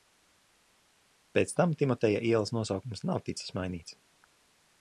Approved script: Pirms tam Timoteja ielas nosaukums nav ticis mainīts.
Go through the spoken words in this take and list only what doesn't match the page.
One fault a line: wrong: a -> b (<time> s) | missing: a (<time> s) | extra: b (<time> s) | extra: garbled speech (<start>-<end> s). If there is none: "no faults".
wrong: Pirms -> Pēc (1.4 s)